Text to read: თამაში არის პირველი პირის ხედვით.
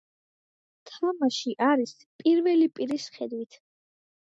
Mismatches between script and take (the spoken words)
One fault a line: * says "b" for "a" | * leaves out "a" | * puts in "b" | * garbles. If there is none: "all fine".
all fine